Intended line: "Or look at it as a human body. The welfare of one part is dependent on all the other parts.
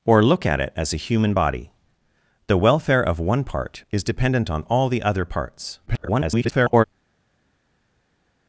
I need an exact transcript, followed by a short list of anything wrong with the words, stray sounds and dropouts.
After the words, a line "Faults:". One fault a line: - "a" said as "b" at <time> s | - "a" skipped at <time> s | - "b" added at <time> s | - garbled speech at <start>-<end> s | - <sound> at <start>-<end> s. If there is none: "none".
"Or look at it as a human body. The welfare of one part is dependent on all the other parts. [garbled]
Faults:
- garbled speech at 5.9-6.8 s